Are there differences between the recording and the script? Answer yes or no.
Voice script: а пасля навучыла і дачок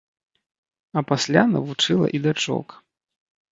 no